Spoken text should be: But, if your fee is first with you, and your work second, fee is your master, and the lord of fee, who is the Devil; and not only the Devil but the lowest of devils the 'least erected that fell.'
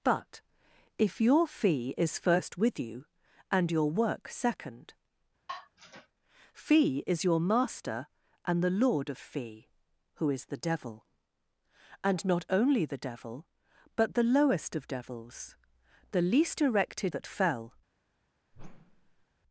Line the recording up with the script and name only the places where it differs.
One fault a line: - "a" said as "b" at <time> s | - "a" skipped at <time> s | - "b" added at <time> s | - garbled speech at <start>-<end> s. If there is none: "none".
none